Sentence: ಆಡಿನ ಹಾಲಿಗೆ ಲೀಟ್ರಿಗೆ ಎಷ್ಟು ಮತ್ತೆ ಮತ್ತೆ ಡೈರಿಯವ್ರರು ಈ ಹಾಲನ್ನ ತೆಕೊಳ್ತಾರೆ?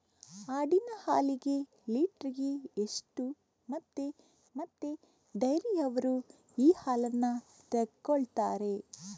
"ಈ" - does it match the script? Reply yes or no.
yes